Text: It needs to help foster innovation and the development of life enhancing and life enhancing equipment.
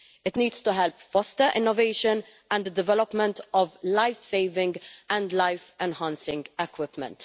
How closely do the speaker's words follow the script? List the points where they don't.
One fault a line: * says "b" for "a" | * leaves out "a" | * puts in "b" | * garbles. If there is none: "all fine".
* says "saving" for "enhancing"